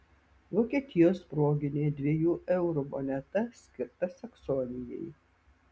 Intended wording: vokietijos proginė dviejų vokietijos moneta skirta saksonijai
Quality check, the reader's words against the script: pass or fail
fail